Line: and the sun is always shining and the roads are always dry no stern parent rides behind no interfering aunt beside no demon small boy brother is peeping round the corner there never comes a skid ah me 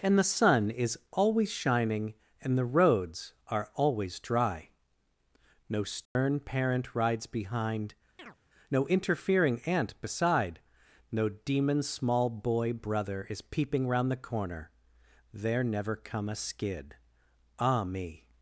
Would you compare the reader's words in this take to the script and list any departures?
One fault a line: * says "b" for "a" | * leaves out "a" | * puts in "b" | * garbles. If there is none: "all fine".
* says "come" for "comes"